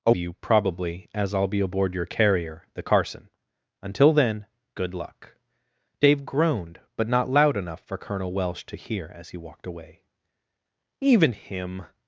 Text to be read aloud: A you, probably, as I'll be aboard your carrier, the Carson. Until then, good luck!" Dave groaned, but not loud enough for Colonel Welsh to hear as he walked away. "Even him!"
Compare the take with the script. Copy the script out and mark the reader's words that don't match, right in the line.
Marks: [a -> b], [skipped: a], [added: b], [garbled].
A you, probably, as I'll be aboard your carrier, the Carson. Until then, good luck!" Dave groaned, but not loud enough for Colonel Welsh to hear as he walked away. "Even him!"